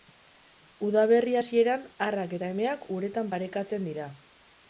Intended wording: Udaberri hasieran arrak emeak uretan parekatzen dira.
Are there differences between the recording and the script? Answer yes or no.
yes